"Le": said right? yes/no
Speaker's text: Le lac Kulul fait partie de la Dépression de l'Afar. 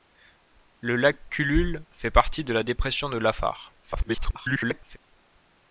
yes